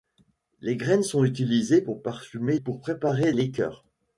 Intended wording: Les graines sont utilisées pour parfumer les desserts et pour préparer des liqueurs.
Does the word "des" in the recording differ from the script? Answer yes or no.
yes